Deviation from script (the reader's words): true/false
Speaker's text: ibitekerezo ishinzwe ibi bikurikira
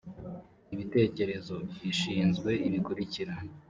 true